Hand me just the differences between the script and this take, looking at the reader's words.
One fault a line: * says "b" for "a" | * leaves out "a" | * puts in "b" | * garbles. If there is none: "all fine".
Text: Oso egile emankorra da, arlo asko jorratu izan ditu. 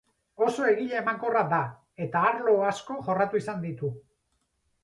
* puts in "eta"